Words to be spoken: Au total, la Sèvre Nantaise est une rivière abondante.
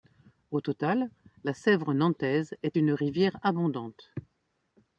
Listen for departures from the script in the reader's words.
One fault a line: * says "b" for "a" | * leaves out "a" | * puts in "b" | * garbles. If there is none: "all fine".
all fine